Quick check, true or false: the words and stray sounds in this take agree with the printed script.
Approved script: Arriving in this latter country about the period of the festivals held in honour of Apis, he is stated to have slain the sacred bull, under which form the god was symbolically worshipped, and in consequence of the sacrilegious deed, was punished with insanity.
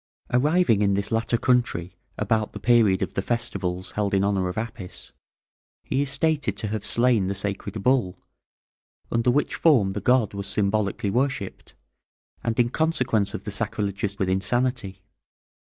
false